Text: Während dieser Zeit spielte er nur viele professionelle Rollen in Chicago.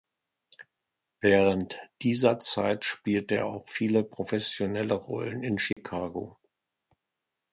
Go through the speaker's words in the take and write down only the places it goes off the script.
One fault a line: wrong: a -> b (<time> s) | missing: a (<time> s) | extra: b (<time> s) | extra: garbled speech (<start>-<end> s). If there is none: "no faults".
wrong: nur -> auch (3.4 s)